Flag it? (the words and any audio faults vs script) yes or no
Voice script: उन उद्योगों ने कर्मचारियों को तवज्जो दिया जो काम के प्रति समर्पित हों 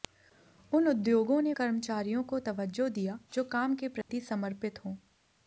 yes